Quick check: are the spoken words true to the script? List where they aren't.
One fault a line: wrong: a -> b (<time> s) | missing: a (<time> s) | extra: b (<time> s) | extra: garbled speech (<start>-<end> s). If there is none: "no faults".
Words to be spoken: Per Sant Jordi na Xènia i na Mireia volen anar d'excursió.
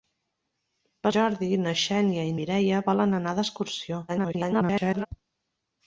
missing: Sant (1.1 s)
missing: na (2.4 s)
extra: garbled speech (4.1-5.1 s)